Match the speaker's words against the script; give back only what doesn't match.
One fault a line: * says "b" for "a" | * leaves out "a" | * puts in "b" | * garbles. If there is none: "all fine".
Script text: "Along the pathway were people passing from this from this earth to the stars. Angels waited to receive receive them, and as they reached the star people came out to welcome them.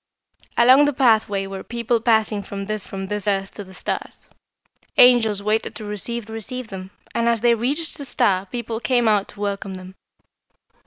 all fine